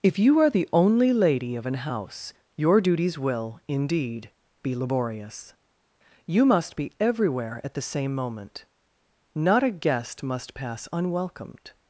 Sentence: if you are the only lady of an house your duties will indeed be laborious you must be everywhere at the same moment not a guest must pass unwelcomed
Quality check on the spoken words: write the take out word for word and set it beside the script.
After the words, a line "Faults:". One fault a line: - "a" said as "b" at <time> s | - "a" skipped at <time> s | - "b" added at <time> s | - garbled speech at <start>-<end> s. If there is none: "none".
if you are the only lady of an house your duties will indeed be laborious you must be everywhere at the same moment not a guest must pass unwelcomed
Faults:
none